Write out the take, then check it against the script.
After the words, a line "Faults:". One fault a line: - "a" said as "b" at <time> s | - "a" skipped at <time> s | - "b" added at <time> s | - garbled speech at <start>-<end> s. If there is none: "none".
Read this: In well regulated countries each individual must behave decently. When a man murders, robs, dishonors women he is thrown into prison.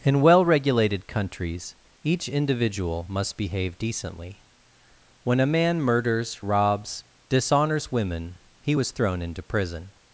In well regulated countries each individual must behave decently. When a man murders, robs, dishonors women he was thrown into prison.
Faults:
- "is" said as "was" at 8.7 s